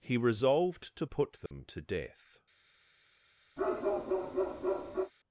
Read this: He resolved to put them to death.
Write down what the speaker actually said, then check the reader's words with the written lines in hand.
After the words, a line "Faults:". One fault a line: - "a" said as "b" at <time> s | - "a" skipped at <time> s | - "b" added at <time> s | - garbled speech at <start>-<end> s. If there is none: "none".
He resolved to put them to death.
Faults:
none